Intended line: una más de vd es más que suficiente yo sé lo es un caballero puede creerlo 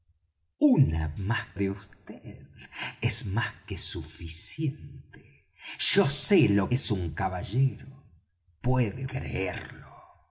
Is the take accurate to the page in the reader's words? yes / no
yes